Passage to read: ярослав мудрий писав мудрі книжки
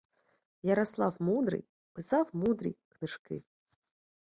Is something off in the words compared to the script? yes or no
no